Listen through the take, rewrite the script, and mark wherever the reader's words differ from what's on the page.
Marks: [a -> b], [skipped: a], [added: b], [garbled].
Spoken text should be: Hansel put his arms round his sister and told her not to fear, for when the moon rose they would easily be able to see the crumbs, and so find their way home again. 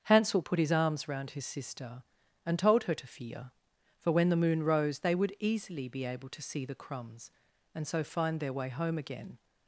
Hansel put his arms round his sister and told her [skipped: not] to fear, for when the moon rose they would easily be able to see the crumbs, and so find their way home again.